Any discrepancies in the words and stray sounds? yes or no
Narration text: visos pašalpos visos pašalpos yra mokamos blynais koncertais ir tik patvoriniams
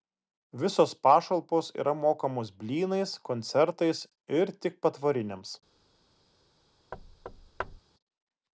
yes